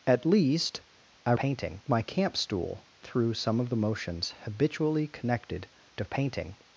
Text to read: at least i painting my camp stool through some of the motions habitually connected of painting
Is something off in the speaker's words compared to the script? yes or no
no